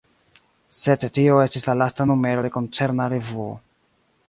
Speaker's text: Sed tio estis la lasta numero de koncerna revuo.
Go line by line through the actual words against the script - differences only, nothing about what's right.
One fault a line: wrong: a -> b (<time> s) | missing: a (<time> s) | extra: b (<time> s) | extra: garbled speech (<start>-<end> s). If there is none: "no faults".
no faults